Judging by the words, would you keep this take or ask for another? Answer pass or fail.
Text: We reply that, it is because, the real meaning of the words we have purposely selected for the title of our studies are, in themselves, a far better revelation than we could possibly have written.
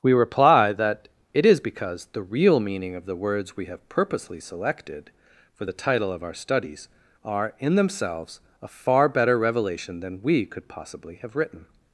pass